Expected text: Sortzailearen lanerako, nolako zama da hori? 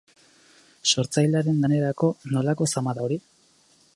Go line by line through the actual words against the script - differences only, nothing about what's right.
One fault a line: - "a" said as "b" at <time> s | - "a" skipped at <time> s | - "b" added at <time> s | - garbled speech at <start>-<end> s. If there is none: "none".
none